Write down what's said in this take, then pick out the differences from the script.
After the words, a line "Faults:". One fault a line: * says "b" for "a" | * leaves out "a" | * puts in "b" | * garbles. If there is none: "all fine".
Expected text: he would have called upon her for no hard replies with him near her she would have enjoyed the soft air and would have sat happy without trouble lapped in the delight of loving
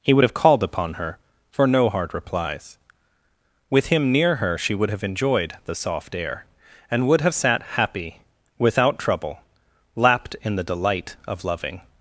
he would have called upon her for no hard replies with him near her she would have enjoyed the soft air and would have sat happy without trouble lapped in the delight of loving
Faults:
all fine